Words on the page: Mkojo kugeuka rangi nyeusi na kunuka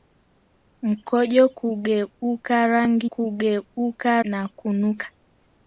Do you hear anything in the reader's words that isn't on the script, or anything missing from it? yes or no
yes